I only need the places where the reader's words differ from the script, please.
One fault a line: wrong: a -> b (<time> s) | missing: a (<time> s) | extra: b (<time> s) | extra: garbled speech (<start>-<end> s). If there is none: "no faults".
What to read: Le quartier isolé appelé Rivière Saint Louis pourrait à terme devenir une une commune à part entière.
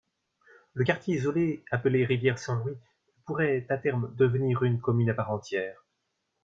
missing: une (4.8 s)